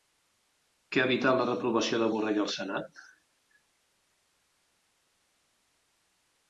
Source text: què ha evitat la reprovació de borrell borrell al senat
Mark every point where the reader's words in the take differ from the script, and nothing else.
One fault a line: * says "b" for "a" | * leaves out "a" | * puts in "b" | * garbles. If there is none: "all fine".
* leaves out "borrell"